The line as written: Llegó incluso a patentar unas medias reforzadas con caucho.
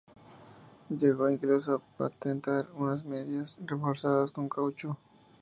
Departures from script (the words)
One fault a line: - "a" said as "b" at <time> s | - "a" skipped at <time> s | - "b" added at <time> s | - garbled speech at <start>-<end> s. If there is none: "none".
none